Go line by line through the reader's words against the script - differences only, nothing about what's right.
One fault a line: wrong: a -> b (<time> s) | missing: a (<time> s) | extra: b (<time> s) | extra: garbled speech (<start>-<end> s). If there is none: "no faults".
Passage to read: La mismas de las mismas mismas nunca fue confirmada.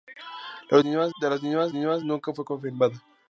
no faults